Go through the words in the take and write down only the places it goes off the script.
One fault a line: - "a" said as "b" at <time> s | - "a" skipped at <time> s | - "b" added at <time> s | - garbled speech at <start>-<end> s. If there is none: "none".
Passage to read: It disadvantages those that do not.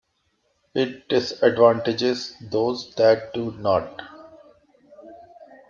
none